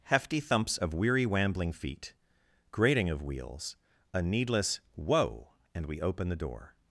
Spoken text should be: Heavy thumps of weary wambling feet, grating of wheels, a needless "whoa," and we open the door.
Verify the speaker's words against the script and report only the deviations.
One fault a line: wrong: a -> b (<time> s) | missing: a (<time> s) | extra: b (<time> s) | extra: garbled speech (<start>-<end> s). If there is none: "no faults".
wrong: Heavy -> Hefty (0.0 s)